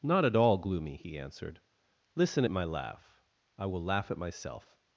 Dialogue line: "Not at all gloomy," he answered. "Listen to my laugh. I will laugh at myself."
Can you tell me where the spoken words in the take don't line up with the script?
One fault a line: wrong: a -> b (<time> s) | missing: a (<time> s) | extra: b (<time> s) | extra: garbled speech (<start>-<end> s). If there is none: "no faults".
wrong: to -> at (2.4 s)